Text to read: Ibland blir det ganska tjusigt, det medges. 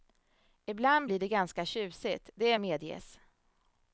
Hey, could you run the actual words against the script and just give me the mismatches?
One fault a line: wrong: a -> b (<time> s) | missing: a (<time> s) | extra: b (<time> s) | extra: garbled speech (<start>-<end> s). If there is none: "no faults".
no faults